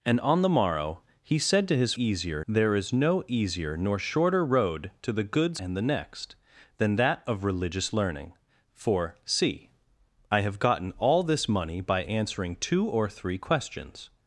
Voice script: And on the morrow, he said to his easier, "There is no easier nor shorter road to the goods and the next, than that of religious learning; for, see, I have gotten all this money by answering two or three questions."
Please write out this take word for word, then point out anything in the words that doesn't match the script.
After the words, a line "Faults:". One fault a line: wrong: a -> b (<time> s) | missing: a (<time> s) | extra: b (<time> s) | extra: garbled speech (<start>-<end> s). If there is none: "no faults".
And on the morrow, he said to his easier, "There is no easier nor shorter road to the goods and the next, than that of religious learning; for, see, I have gotten all this money by answering two or three questions."
Faults:
no faults